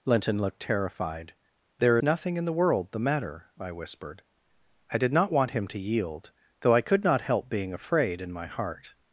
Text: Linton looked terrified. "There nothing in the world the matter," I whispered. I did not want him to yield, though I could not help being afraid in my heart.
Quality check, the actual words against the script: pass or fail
pass